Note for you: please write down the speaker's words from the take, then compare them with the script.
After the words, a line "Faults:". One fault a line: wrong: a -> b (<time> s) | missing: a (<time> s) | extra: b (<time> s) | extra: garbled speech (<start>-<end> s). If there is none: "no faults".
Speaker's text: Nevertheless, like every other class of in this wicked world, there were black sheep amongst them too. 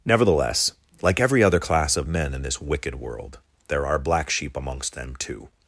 Nevertheless, like every other class of men in this wicked world, there are black sheep amongst them too.
Faults:
extra: men (2.1 s)
wrong: were -> are (3.9 s)